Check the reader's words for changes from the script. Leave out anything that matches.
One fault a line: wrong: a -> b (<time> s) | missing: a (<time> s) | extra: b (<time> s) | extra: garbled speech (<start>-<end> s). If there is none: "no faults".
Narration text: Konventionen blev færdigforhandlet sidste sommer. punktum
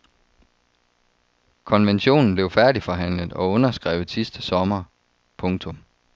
extra: og underskrevet (3.3 s)